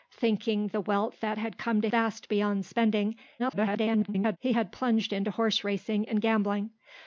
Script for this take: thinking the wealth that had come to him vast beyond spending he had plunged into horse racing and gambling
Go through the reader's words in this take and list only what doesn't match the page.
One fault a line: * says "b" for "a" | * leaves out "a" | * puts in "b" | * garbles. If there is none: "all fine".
* leaves out "him"
* garbles